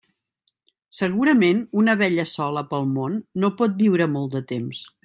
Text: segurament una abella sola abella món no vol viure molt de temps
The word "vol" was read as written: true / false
false